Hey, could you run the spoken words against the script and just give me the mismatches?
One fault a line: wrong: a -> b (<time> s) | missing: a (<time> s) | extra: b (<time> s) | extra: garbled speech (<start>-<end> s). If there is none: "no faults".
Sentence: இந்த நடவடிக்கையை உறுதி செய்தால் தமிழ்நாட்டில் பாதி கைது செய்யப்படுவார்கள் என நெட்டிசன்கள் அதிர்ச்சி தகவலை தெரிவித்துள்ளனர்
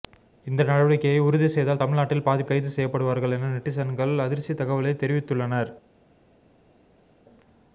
no faults